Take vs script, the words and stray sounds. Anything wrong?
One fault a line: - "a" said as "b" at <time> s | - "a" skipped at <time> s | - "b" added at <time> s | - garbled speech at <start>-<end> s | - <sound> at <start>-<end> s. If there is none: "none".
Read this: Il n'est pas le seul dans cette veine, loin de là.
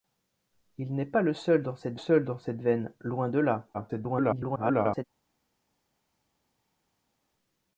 - "seul dans cette" added at 2.0 s
- garbled speech at 3.7-5.0 s